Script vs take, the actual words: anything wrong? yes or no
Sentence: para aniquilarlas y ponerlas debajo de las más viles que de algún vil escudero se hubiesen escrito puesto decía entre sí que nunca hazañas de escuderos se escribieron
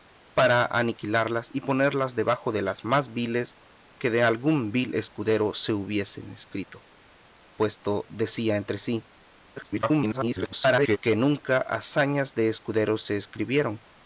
yes